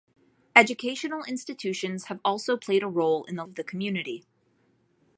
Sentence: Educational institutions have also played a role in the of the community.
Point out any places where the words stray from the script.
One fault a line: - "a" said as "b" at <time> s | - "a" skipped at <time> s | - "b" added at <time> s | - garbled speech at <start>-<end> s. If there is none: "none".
none